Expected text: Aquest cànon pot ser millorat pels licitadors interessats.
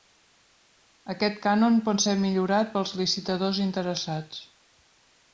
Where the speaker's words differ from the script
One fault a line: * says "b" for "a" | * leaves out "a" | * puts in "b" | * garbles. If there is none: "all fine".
all fine